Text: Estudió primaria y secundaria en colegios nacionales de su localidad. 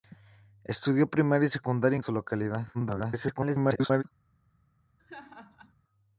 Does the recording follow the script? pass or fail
fail